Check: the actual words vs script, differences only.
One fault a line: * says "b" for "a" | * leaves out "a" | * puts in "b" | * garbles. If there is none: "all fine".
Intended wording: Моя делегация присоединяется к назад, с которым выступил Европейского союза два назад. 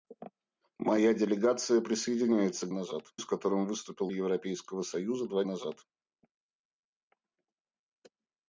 all fine